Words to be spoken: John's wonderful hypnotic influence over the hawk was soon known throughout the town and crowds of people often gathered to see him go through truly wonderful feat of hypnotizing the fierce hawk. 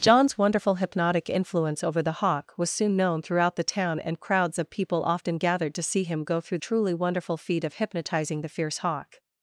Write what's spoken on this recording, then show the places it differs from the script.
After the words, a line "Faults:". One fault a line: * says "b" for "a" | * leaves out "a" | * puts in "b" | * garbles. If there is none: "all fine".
John's wonderful hypnotic influence over the hawk was soon known throughout the town and crowds of people often gathered to see him go through truly wonderful feat of hypnotizing the fierce hawk.
Faults:
all fine